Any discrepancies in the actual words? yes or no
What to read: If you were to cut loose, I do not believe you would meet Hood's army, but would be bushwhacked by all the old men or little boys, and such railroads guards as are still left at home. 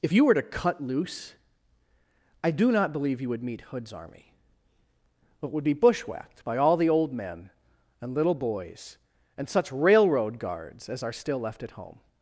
yes